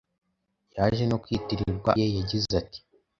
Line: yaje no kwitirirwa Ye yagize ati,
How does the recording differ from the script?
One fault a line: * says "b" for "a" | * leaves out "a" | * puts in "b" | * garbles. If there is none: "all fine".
all fine